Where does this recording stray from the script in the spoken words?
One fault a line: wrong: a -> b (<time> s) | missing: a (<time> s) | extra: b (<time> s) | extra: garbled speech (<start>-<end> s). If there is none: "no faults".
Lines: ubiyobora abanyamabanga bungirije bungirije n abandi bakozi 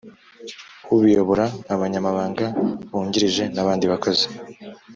missing: bungirije (3.4 s)